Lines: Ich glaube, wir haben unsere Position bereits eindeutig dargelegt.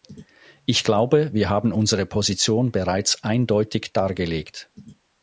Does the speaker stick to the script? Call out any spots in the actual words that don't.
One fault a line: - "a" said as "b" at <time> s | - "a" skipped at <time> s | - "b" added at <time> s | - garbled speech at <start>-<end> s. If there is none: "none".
none